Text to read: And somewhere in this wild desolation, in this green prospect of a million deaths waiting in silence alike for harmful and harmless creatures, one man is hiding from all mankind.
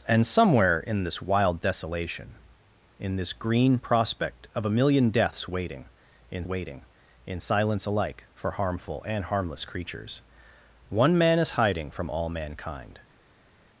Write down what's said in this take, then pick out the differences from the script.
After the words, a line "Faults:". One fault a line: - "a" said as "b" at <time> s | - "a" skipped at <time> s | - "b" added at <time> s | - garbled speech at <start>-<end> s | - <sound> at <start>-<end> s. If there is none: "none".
And somewhere in this wild desolation, in this green prospect of a million deaths waiting in waiting in silence alike for harmful and harmless creatures, one man is hiding from all mankind.
Faults:
- "waiting in" added at 6.4 s